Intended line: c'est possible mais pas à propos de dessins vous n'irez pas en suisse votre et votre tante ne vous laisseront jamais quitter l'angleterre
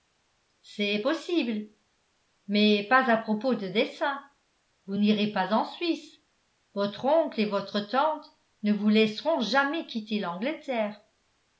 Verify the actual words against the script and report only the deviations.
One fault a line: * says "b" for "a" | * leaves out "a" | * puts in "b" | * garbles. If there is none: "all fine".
* puts in "oncle"